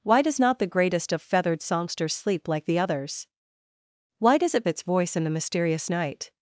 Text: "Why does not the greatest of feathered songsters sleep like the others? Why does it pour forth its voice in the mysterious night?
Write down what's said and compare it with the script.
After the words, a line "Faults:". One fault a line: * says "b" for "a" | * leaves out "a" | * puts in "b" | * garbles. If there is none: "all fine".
"Why does not the greatest of feathered songsters sleep like the others? Why does it its voice in the mysterious night?
Faults:
* leaves out "pour forth"